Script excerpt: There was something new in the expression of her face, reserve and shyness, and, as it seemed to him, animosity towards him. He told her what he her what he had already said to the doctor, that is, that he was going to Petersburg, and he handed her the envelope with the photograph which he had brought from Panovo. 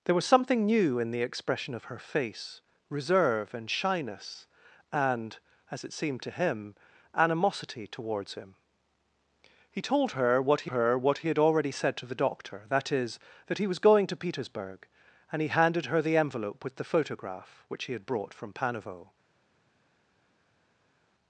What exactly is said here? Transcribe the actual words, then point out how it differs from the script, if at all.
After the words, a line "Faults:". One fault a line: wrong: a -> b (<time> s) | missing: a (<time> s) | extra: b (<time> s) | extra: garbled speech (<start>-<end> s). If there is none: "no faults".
There was something new in the expression of her face, reserve and shyness, and, as it seemed to him, animosity towards him. He told her what he her what he had already said to the doctor, that is, that he was going to Petersburg, and he handed her the envelope with the photograph which he had brought from Panovo.
Faults:
no faults